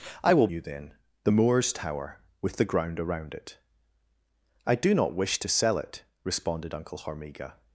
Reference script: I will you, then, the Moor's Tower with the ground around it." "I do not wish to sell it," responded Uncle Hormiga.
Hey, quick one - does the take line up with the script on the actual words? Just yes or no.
yes